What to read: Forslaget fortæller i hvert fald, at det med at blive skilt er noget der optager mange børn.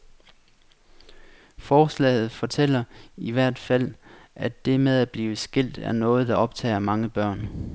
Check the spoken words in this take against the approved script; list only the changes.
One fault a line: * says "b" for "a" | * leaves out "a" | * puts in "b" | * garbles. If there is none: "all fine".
all fine